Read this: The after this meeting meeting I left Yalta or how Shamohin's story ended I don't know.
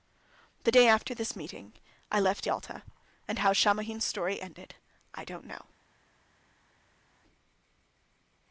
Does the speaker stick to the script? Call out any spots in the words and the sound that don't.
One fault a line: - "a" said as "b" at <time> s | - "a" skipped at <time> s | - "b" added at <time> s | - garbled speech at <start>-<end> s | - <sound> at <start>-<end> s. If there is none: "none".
- "day" added at 0.7 s
- "meeting" skipped at 1.7 s
- "or" said as "and" at 3.3 s